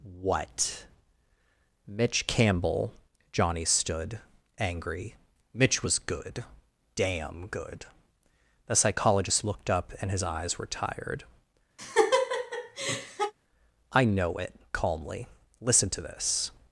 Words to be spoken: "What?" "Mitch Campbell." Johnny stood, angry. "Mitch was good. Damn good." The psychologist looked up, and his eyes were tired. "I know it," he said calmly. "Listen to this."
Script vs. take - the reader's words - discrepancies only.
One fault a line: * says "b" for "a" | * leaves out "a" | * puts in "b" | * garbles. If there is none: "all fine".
* leaves out "he said"